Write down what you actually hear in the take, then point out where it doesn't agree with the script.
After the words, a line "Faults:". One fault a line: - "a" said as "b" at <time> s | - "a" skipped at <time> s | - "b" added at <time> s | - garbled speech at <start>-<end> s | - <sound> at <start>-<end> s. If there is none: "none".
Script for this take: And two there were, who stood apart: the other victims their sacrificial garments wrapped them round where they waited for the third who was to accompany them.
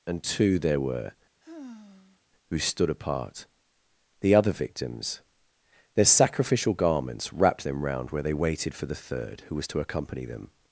And two there were, who stood apart: the other victims their sacrificial garments wrapped them round where they waited for the third who was to accompany them.
Faults:
- sigh at 1.4-2.2 s